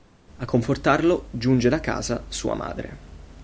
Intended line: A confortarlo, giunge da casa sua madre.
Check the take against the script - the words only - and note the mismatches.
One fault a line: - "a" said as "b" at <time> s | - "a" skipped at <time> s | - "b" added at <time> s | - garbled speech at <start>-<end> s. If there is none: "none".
none